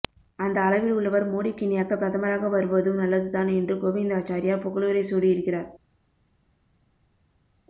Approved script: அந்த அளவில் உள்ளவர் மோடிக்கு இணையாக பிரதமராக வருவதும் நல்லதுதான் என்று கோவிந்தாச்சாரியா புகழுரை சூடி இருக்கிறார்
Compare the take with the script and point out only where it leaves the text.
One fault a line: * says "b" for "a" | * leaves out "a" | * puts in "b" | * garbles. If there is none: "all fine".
all fine